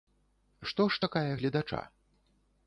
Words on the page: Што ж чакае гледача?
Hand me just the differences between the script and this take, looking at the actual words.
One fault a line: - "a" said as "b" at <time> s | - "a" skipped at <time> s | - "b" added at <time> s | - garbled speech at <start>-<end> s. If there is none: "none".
none